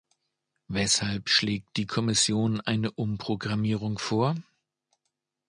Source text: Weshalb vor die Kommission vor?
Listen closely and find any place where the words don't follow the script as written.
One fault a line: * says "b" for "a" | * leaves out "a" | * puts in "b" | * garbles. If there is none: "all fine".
* says "schlägt" for "vor"
* puts in "eine Umprogrammierung"